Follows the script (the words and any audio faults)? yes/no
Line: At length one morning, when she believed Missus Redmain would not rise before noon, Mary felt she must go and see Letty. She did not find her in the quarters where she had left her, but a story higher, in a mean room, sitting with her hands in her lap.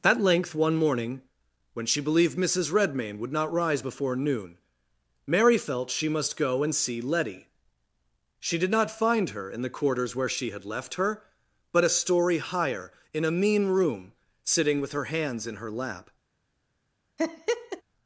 no